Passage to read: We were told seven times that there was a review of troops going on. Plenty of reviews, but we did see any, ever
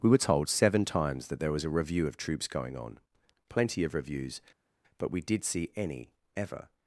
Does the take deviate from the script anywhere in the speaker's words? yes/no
no